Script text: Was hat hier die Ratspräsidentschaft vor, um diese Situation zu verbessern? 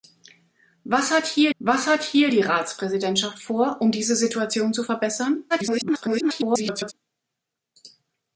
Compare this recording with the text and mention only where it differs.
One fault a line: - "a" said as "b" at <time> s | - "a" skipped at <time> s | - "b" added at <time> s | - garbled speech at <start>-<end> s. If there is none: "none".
- "was hat hier" added at 1.6 s
- garbled speech at 5.5-6.9 s